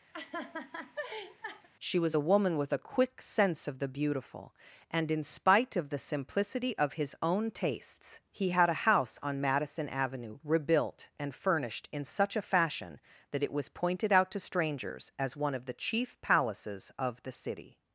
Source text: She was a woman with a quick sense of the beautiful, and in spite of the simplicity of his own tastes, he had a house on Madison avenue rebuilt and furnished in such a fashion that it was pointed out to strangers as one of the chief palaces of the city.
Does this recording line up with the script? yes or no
yes